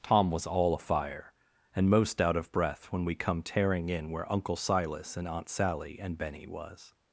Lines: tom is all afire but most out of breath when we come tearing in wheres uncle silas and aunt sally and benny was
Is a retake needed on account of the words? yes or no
yes